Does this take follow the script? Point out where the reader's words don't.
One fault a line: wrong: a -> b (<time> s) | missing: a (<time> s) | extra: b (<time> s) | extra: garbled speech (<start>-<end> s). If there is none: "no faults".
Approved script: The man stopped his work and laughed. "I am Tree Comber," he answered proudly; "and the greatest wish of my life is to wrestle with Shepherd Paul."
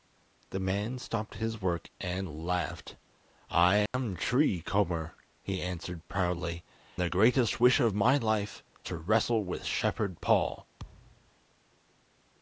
missing: and (6.6 s)
missing: is (8.6 s)